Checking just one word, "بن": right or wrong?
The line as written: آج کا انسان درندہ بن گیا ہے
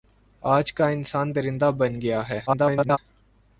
right